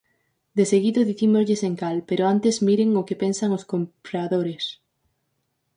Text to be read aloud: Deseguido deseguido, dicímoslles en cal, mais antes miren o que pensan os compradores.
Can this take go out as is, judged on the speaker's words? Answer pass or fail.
fail